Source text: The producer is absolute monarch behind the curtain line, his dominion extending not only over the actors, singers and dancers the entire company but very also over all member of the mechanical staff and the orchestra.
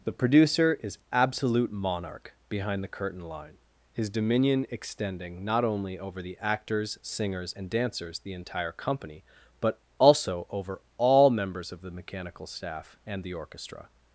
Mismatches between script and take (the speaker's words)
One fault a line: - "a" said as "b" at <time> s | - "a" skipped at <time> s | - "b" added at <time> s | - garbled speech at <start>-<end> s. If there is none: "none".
- "very" skipped at 9.8 s
- "member" said as "members" at 11.3 s